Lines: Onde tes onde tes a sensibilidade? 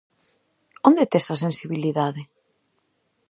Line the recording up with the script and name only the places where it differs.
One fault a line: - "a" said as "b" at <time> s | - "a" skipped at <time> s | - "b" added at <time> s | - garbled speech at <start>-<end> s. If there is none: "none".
- "onde tes" skipped at 1.3 s